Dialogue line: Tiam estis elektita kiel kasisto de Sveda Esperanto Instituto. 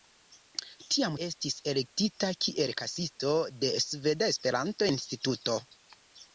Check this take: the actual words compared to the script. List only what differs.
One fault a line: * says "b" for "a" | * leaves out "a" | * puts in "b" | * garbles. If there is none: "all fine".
all fine